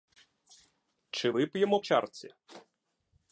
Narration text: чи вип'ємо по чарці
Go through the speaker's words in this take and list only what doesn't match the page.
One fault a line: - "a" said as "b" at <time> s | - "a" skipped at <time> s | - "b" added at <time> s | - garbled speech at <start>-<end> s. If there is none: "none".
- "по" skipped at 1.8 s